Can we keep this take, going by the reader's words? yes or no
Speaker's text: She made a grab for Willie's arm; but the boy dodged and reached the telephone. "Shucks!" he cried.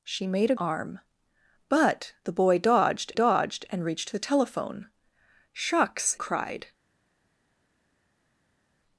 no